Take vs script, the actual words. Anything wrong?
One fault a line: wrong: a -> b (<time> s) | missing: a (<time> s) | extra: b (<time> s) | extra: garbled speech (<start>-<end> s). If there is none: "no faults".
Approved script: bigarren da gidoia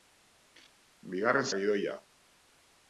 no faults